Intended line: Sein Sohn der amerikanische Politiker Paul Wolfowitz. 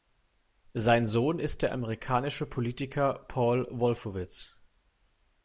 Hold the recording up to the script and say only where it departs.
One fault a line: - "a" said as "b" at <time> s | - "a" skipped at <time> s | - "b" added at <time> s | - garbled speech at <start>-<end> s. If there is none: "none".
- "ist" added at 1.4 s